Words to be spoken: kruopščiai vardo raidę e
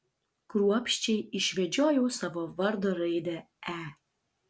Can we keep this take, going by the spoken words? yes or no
no